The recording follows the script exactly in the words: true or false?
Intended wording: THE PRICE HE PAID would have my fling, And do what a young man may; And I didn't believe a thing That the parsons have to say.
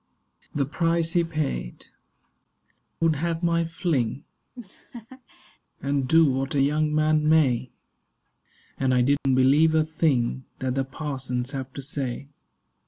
true